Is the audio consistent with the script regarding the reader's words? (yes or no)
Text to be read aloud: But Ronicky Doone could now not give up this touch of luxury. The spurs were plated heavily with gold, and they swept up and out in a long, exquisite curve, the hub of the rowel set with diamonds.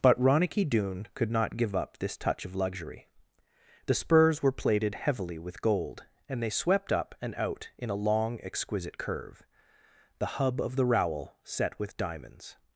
no